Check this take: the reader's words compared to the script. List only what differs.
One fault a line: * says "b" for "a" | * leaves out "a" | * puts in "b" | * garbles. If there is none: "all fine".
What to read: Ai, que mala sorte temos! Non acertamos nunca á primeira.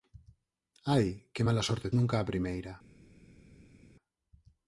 * leaves out "temos Non acertamos"